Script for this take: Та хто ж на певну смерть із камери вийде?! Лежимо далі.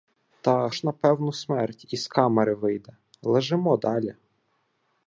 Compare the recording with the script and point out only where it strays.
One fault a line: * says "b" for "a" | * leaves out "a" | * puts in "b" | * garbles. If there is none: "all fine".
* leaves out "хто"